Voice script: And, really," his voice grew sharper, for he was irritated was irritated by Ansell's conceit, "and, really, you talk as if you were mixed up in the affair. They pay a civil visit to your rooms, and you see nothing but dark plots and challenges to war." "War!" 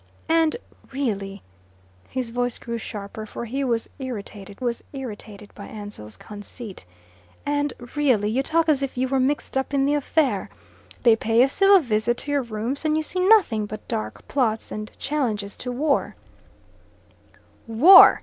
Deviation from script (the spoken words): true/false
false